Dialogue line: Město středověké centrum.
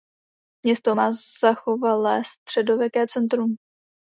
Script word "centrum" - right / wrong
right